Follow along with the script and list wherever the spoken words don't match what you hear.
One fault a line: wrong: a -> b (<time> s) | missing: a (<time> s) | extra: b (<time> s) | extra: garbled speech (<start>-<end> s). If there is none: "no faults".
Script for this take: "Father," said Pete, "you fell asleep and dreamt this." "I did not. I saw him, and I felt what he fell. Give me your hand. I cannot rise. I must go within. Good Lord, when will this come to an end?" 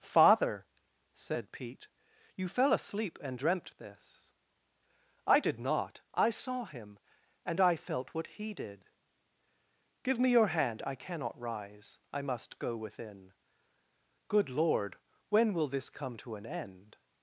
wrong: fell -> did (8.5 s)